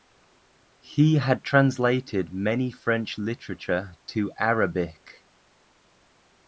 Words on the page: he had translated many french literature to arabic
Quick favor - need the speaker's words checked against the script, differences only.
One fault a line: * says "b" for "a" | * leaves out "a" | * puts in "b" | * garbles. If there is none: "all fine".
all fine